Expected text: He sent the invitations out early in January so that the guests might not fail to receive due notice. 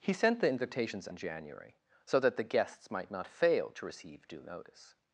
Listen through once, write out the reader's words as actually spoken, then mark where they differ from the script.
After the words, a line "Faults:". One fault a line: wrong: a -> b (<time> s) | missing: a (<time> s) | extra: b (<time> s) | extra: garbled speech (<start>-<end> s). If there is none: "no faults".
He sent the invitations in January so that the guests might not fail to receive due notice.
Faults:
missing: out early (1.1 s)